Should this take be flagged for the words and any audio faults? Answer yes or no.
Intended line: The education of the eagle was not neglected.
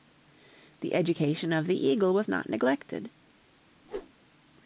yes